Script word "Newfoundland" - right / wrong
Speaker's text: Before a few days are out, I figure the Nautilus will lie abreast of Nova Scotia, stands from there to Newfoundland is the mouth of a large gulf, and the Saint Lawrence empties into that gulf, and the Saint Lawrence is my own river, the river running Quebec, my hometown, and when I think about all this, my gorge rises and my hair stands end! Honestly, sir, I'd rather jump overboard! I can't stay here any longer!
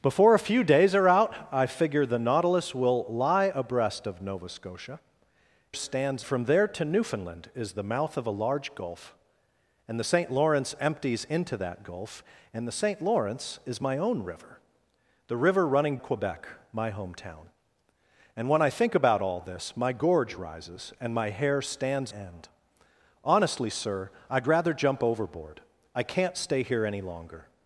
right